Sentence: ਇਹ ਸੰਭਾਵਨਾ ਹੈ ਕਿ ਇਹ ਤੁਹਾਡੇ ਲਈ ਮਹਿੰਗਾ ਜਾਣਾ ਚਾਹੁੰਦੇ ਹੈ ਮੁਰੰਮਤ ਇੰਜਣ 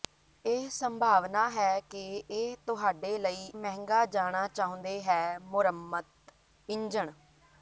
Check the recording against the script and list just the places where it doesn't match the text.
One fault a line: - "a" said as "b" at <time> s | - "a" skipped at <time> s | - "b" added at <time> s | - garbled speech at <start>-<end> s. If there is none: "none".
none